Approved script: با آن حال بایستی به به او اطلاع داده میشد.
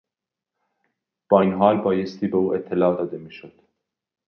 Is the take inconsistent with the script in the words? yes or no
yes